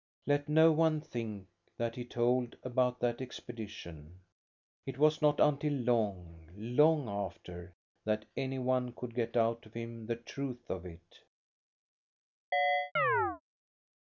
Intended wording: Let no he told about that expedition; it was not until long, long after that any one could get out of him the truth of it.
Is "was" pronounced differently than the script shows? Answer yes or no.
no